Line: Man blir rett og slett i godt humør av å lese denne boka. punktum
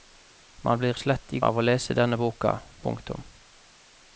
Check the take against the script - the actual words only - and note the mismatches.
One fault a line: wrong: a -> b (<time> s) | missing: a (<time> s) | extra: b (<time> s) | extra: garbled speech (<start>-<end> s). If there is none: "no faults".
missing: rett (0.9 s)
missing: godt humør (1.4 s)